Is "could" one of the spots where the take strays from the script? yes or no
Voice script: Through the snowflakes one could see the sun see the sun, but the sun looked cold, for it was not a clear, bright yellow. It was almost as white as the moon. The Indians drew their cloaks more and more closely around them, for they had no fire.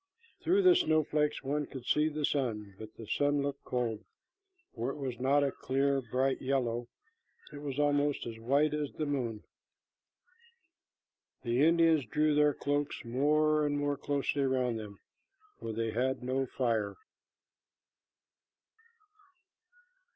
no